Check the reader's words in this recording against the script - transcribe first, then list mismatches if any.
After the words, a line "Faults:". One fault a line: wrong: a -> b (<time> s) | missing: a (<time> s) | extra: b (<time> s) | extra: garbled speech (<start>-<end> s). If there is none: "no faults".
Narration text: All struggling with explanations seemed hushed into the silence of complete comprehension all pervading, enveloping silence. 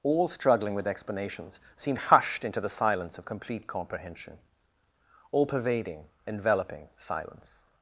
All struggling with explanations seemed hushed into the silence of complete comprehension all pervading, enveloping silence.
Faults:
no faults